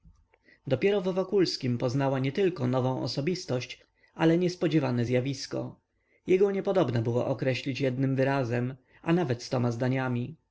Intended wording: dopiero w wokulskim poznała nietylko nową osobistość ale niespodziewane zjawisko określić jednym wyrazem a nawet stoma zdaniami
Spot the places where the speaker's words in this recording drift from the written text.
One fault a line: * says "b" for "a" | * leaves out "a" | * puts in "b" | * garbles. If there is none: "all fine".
* puts in "jego niepodobna było"